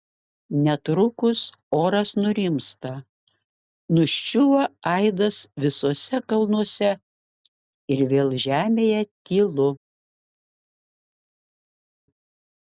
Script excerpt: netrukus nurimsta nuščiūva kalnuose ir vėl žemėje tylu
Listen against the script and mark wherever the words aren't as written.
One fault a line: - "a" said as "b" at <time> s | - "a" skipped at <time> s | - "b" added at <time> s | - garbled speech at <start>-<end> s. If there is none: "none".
- "oras" added at 1.8 s
- "aidas visuose" added at 4.9 s